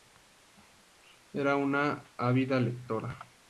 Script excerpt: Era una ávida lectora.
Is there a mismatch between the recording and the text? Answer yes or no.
no